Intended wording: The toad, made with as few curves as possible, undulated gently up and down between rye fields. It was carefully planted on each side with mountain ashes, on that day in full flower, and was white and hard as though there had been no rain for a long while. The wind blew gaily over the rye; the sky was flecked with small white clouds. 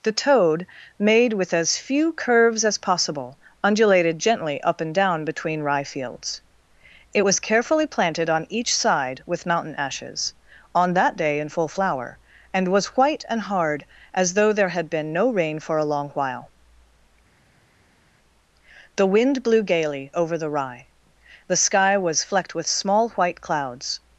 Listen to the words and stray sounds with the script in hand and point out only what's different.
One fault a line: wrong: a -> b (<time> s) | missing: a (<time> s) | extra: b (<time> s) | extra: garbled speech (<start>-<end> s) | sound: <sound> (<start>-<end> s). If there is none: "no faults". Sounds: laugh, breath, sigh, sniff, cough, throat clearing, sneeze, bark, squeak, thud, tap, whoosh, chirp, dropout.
no faults